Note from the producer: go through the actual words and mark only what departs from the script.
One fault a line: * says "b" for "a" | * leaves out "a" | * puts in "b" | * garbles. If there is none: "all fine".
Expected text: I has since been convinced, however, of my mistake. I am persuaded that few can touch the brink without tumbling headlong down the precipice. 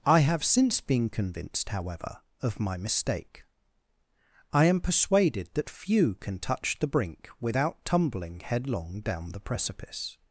* says "have" for "has"